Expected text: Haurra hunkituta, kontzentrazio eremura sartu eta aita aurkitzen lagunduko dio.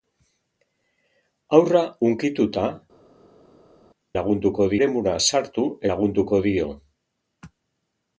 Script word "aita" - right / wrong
wrong